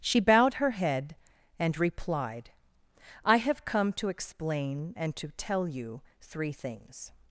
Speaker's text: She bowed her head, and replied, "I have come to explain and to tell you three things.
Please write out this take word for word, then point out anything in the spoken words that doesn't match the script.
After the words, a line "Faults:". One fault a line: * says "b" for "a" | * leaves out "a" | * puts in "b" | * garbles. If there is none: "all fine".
She bowed her head, and replied, "I have come to explain and to tell you three things.
Faults:
all fine